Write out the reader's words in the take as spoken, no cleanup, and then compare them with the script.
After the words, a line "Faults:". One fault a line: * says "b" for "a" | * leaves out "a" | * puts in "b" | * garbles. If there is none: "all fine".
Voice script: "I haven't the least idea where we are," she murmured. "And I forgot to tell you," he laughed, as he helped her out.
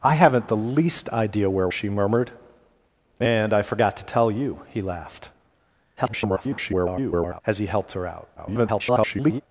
"I haven't the least idea where," she murmured. "And I forgot to tell you," he laughed, [garbled] as he helped her out. [garbled]
Faults:
* leaves out "we are"
* garbles
* garbles